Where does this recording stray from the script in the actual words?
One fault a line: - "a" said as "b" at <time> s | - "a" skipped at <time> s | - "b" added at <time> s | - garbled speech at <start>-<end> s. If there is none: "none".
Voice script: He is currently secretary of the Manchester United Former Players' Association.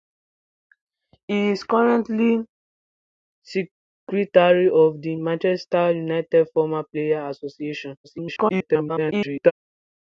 - garbled speech at 8.0-9.5 s